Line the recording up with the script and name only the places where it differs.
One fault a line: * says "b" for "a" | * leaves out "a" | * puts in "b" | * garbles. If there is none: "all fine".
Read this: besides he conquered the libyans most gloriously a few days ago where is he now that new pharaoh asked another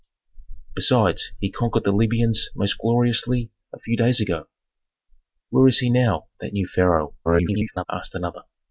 * garbles